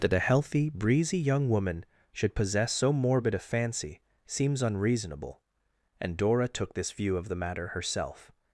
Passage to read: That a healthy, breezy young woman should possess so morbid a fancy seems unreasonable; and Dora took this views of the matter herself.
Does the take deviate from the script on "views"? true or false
true